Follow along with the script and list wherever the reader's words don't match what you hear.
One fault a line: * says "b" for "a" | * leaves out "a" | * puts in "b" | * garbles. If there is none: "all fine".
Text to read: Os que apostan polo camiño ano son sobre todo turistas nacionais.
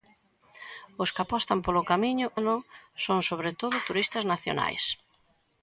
all fine